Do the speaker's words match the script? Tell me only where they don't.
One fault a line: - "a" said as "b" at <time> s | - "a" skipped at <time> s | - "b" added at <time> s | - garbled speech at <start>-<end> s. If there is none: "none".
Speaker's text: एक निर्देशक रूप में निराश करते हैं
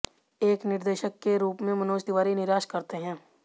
- "के" added at 1.2 s
- "मनोज तिवारी" added at 1.8 s